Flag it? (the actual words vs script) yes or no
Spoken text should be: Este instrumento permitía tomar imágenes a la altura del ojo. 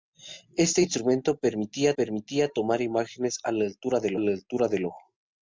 yes